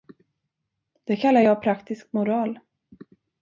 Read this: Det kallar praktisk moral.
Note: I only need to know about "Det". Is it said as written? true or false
true